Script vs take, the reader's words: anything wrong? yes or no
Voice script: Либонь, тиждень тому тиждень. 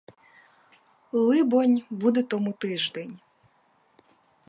yes